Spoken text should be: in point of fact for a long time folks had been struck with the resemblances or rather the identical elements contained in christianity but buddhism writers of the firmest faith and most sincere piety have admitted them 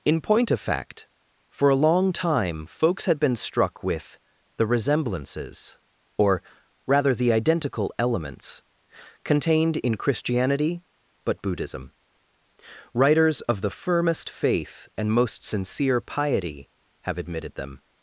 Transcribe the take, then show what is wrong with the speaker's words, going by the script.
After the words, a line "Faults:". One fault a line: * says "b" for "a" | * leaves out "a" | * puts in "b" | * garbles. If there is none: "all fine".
in point of fact for a long time folks had been struck with the resemblances or rather the identical elements contained in christianity but buddhism writers of the firmest faith and most sincere piety have admitted them
Faults:
all fine